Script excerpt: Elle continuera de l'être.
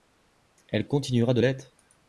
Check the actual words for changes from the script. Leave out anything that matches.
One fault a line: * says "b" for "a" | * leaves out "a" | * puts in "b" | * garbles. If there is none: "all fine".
all fine